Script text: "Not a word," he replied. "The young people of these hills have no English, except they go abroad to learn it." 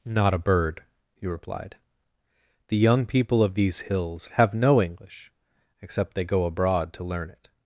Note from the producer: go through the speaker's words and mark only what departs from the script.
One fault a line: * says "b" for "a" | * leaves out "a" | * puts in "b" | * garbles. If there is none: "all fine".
* says "bird" for "word"